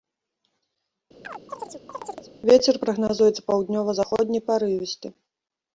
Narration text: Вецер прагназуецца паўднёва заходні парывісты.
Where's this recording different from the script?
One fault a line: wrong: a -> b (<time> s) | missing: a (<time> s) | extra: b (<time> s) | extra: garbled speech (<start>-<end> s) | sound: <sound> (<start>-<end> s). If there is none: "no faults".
sound: chirp (1.2-2.3 s)